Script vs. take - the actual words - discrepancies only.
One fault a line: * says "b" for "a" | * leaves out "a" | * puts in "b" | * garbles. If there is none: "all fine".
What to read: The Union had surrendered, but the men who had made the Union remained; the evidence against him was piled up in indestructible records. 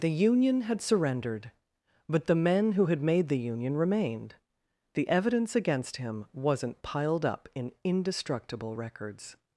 * says "wasn't" for "was"